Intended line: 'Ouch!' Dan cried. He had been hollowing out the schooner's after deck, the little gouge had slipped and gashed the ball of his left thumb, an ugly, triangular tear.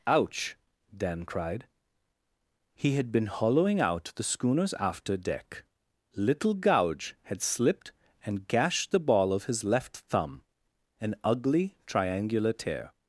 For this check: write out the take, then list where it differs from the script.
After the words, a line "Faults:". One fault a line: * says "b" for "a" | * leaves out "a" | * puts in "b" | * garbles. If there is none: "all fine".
'Ouch!' Dan cried. He had been hollowing out the schooner's after deck, little gouge had slipped and gashed the ball of his left thumb, an ugly, triangular tear.
Faults:
* leaves out "the"